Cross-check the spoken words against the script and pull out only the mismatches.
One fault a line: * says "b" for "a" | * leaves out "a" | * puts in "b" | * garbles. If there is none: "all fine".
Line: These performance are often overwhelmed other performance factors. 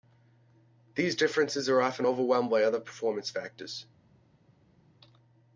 * says "differences" for "performance"
* puts in "by"